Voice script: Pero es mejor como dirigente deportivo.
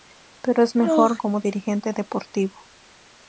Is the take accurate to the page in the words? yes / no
yes